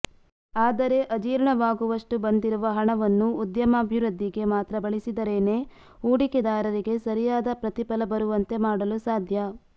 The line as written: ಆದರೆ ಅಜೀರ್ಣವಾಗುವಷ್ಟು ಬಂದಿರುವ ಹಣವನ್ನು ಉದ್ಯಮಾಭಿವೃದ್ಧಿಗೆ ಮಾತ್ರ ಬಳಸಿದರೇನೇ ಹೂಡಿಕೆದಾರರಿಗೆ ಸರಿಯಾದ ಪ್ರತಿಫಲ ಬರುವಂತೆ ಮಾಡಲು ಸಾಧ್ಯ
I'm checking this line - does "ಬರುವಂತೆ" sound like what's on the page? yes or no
yes